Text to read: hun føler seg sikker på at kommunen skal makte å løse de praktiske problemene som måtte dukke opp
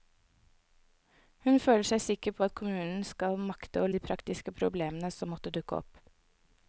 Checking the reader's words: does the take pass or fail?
fail